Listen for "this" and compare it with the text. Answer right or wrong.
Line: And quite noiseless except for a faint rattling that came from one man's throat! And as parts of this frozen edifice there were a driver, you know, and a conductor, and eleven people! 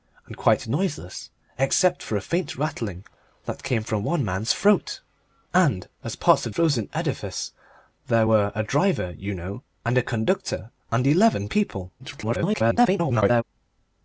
wrong